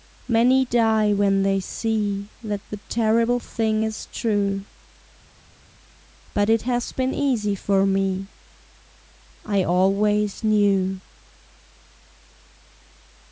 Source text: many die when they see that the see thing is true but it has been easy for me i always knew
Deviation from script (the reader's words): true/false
true